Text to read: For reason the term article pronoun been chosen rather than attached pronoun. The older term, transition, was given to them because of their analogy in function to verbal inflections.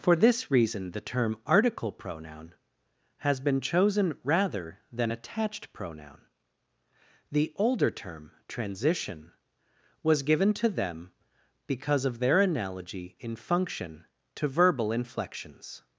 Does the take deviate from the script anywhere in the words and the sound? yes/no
yes